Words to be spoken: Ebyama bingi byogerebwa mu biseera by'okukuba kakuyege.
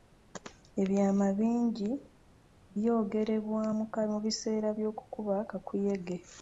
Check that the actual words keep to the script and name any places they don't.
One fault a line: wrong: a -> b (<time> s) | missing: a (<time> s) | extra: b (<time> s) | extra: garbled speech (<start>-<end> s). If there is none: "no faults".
no faults